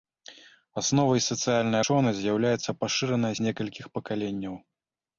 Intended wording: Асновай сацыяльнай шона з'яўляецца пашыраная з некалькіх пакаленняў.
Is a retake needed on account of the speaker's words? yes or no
no